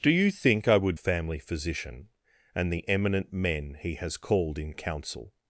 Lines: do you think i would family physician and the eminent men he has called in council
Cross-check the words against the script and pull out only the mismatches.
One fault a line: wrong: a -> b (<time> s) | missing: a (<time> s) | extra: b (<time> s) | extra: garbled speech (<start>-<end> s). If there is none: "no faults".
no faults